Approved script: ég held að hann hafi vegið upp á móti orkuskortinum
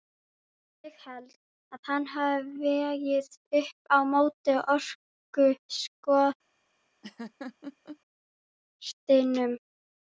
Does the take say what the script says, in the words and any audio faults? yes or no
no